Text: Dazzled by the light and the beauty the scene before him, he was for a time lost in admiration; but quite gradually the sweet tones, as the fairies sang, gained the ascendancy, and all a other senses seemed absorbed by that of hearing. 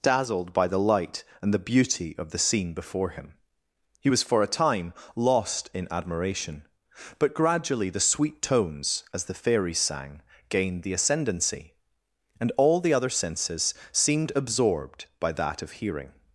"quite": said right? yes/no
no